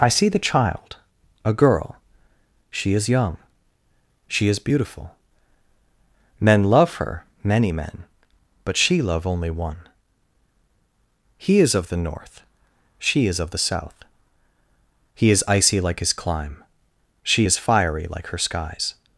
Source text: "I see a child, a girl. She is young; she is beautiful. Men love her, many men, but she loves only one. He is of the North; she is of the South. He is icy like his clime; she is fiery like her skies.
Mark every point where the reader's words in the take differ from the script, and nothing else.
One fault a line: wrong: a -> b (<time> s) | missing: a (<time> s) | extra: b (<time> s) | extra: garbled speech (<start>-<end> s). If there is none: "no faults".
wrong: a -> the (0.3 s)
wrong: loves -> love (9.0 s)